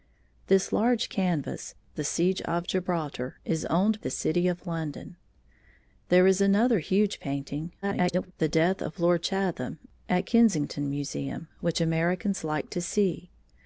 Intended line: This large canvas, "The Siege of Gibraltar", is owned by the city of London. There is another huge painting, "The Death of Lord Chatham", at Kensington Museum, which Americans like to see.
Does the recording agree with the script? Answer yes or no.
no